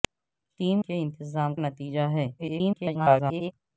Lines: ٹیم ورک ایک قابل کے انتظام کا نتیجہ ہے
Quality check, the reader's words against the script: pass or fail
fail